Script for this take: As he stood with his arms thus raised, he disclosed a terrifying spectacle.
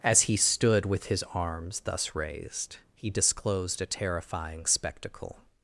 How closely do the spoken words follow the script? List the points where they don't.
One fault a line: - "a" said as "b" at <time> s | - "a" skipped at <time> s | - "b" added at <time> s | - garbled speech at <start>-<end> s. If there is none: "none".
none